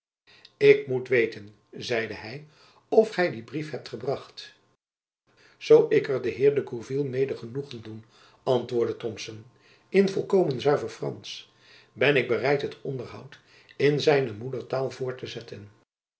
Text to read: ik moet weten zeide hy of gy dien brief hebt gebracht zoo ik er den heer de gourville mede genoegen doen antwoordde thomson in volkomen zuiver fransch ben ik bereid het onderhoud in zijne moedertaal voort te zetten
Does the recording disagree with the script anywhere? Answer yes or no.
no